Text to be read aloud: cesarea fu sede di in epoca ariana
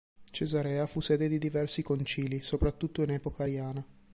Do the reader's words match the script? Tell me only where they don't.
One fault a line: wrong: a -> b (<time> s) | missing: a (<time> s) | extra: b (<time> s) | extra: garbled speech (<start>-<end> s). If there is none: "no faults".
extra: diversi concili soprattutto (1.4 s)